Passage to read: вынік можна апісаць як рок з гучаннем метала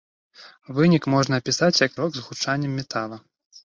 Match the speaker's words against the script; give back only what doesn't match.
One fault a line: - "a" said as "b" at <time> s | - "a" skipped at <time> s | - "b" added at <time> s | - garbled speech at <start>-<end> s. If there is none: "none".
none